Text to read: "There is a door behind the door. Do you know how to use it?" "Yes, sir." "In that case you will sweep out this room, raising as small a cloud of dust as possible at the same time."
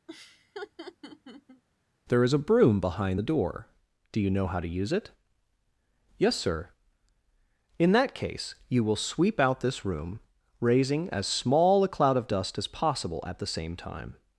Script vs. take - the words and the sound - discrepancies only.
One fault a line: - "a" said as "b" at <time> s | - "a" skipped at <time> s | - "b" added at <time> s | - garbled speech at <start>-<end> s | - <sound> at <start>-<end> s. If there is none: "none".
- laugh at 0.1-1.6 s
- "door" said as "broom" at 2.4 s